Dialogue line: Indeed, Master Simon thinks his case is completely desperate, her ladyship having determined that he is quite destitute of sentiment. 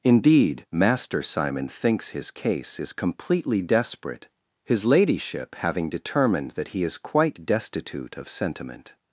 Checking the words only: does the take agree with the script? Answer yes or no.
no